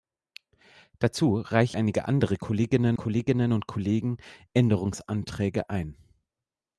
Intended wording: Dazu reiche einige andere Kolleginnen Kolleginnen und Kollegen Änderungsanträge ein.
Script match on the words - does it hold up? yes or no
yes